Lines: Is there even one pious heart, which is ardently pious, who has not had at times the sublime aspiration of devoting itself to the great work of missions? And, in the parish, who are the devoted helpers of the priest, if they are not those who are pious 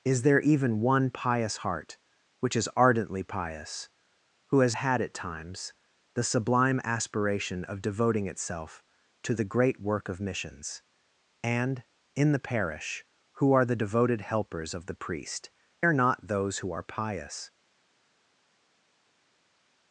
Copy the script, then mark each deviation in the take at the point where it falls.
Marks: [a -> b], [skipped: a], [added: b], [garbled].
Is there even one pious heart, which is ardently pious, who has [skipped: not] had at times the sublime aspiration of devoting itself to the great work of missions? And, in the parish, who are the devoted helpers of the priest, [skipped: if they] are not those who are pious